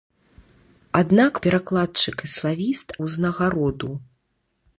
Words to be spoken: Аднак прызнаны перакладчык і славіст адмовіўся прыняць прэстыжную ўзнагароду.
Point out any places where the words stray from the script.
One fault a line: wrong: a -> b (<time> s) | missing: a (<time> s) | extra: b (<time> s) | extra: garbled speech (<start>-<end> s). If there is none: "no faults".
missing: прызнаны (1.3 s)
missing: адмовіўся прыняць прэстыжную (2.9 s)